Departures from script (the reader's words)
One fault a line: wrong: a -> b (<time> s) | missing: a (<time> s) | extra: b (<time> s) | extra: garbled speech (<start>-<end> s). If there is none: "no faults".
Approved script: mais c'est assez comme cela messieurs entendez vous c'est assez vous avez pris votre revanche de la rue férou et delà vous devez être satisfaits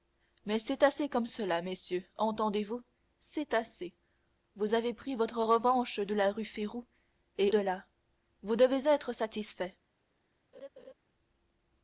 no faults